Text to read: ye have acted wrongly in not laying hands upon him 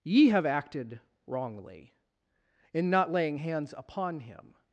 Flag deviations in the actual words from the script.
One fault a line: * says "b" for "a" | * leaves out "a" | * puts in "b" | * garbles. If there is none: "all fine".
all fine